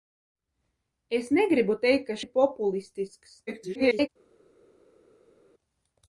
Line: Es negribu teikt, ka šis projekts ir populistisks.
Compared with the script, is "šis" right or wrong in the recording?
wrong